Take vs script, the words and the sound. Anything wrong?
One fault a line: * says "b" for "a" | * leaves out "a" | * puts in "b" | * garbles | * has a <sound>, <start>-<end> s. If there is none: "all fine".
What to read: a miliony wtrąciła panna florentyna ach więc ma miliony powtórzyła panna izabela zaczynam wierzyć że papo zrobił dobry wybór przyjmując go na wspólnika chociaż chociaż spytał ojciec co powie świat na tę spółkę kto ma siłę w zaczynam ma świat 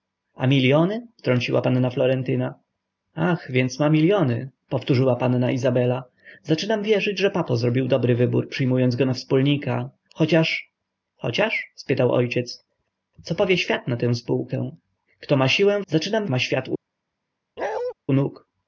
* has a bark, 17.6-17.9 s